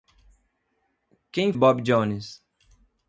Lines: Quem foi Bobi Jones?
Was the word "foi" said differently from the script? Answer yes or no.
yes